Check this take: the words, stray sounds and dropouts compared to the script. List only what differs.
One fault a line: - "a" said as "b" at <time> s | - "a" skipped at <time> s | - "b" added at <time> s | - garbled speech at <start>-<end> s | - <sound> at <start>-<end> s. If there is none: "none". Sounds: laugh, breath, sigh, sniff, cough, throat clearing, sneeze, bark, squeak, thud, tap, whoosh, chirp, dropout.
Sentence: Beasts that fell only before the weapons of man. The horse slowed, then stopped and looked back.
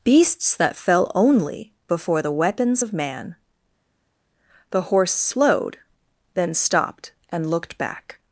none